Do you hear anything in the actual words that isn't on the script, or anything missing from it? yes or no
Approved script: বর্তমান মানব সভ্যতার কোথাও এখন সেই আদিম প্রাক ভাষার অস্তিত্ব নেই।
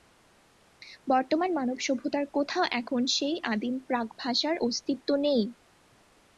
no